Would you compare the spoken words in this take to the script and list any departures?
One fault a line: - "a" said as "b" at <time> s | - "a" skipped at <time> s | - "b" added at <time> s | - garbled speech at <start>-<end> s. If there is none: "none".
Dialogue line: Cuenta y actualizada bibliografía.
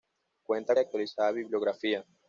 none